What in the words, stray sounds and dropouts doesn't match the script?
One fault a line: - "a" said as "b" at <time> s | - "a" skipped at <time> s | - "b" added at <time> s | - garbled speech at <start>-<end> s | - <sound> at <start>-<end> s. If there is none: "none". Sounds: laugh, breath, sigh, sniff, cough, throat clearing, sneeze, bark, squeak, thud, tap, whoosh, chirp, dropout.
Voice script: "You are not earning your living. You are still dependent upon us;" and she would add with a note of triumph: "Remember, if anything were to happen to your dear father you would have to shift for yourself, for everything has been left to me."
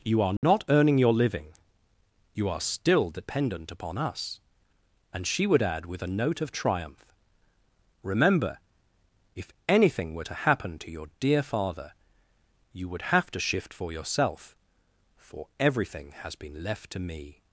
- dropout at 0.4-0.4 s